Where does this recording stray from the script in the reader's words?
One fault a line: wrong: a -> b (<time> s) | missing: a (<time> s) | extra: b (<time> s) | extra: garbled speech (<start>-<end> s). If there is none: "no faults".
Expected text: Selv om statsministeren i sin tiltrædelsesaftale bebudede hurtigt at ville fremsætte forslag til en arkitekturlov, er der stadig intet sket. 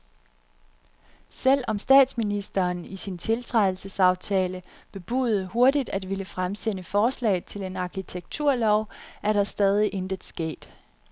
no faults